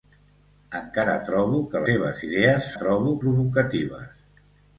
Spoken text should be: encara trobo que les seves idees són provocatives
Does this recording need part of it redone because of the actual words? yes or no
yes